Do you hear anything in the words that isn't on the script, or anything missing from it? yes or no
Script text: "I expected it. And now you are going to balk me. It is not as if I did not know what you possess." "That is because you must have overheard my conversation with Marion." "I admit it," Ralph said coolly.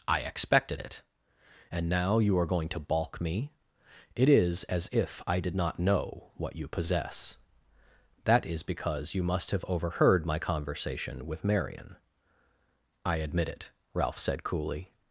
yes